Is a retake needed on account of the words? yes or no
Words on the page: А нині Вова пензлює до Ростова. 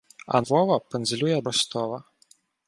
yes